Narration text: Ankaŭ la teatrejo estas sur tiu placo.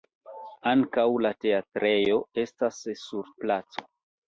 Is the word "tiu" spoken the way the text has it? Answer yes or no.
no